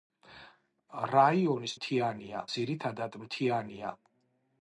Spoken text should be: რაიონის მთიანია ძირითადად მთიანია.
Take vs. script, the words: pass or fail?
pass